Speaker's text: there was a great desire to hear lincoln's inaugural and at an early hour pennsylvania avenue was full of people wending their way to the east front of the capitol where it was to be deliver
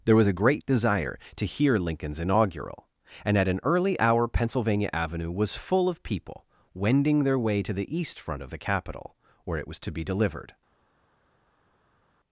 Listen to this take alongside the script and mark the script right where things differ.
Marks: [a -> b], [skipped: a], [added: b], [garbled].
there was a great desire to hear lincoln's inaugural and at an early hour pennsylvania avenue was full of people wending their way to the east front of the capitol where it was to be [deliver -> delivered]